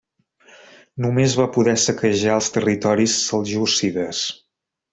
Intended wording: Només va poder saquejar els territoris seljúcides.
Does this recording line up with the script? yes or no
yes